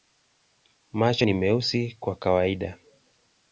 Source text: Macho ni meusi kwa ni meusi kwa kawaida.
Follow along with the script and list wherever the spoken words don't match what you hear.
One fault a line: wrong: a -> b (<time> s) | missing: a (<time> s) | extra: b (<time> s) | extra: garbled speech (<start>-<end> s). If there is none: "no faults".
missing: ni meusi kwa (2.2 s)